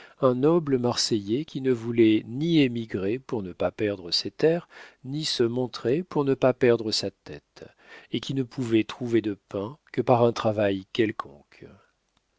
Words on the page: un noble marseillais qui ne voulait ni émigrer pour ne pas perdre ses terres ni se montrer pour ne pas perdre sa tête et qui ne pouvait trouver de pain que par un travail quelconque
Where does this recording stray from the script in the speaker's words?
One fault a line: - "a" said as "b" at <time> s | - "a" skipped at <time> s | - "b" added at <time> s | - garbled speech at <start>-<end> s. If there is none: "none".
none